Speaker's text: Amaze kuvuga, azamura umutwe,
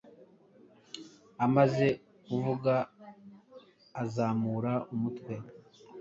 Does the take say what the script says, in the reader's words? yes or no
yes